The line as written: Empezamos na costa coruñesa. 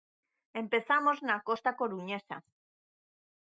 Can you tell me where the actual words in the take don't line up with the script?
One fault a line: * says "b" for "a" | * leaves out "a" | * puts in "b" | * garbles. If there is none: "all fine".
all fine